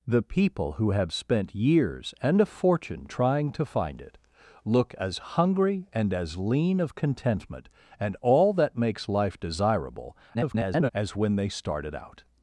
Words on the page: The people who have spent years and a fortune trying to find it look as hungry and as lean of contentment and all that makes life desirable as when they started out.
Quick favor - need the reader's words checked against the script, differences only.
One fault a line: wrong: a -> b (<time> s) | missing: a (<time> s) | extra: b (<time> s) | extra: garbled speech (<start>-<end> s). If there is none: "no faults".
extra: garbled speech (10.3-10.9 s)